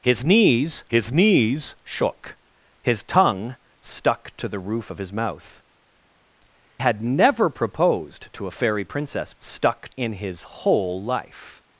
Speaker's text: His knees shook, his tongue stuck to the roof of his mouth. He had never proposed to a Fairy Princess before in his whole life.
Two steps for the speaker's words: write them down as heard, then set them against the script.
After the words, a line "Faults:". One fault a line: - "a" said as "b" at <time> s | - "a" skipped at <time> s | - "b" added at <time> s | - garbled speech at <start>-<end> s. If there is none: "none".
His knees his knees shook, his tongue stuck to the roof of his mouth. Had never proposed to a Fairy Princess stuck in his whole life.
Faults:
- "his knees" added at 0.9 s
- "He" skipped at 5.6 s
- "before" said as "stuck" at 9.4 s